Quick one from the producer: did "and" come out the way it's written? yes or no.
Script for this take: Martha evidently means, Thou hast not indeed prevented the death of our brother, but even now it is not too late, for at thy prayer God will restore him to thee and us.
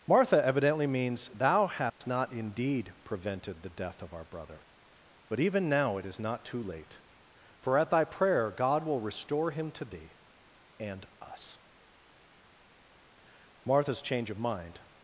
yes